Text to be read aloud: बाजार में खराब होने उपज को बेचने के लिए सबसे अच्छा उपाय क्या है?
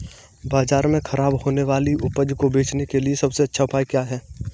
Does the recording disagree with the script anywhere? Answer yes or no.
yes